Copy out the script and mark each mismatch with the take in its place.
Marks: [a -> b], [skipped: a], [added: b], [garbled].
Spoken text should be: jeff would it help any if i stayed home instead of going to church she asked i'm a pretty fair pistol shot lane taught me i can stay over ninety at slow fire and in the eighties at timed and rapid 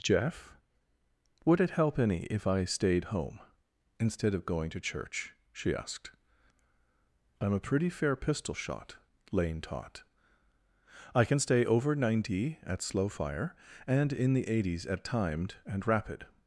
jeff would it help any if i stayed home instead of going to church she asked i'm a pretty fair pistol shot lane taught [skipped: me] i can stay over ninety at slow fire and in the eighties at timed and rapid